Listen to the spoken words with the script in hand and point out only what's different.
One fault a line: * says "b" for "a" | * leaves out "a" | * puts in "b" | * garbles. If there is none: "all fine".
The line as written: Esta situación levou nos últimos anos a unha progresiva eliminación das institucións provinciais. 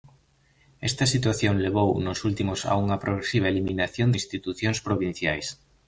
* leaves out "anos"
* leaves out "das"